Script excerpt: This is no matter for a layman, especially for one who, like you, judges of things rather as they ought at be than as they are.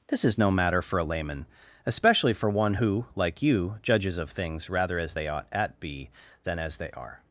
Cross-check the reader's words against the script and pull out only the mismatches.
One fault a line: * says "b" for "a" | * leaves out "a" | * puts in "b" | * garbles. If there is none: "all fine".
all fine